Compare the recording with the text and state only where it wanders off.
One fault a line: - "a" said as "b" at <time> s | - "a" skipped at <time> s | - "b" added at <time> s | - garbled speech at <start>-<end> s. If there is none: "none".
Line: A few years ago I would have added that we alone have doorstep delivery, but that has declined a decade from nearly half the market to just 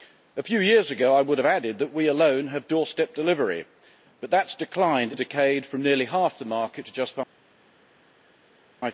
none